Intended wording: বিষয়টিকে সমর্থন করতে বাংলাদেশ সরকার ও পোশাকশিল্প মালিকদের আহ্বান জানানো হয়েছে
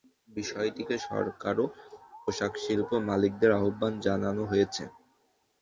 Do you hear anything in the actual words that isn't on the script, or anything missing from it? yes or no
yes